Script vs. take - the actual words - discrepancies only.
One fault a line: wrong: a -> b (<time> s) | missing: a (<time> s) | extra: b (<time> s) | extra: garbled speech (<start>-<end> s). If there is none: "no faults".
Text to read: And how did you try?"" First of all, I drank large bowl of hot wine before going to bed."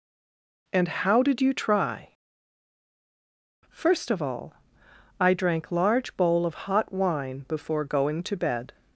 no faults